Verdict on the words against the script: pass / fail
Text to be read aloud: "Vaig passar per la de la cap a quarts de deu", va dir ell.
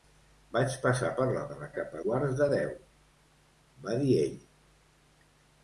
pass